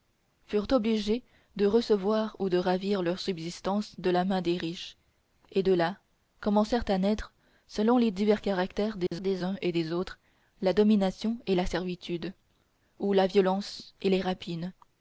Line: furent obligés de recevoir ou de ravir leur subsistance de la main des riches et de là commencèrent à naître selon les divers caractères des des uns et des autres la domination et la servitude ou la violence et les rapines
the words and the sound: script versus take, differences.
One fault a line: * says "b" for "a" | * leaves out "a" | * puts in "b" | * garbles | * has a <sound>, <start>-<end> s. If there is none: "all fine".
* has a dropout, 9.1-9.1 s